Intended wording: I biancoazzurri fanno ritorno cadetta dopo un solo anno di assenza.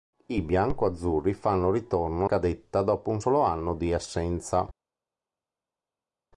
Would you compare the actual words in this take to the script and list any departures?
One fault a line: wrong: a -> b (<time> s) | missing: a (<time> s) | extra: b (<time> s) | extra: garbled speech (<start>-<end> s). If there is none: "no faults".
no faults